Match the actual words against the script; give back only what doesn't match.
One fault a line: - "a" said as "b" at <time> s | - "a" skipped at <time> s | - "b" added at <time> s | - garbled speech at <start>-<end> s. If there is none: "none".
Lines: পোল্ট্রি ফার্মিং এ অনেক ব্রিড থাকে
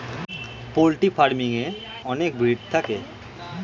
none